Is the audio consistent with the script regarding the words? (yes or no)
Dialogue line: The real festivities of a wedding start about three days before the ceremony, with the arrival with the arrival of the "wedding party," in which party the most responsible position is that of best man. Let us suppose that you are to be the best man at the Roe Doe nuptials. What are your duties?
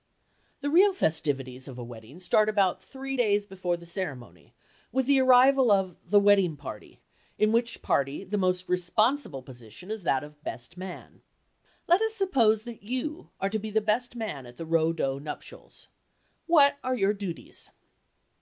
no